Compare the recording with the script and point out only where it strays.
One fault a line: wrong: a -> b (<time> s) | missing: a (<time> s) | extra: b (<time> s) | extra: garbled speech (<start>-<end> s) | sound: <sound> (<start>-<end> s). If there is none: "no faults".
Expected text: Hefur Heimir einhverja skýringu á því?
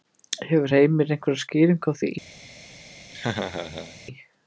sound: laugh (3.1-4.0 s)